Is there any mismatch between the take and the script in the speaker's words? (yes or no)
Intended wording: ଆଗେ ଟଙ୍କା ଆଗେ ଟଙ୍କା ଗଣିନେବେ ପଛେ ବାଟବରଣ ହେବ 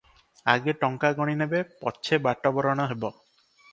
yes